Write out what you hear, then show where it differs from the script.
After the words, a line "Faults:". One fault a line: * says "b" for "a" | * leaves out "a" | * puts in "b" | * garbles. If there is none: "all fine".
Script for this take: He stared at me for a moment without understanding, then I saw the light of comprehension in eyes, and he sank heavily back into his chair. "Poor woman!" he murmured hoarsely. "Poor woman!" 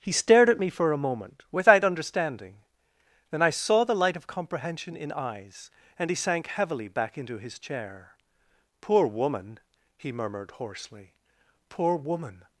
He stared at me for a moment without understanding, then I saw the light of comprehension in eyes, and he sank heavily back into his chair. "Poor woman!" he murmured hoarsely. "Poor woman!"
Faults:
all fine